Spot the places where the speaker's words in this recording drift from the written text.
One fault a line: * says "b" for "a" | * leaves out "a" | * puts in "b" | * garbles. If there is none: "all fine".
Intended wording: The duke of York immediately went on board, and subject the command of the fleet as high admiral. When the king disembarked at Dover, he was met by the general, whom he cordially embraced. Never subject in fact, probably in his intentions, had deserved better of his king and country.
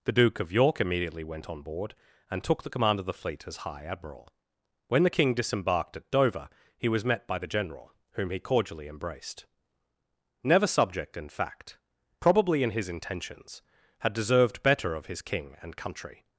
* says "took" for "subject"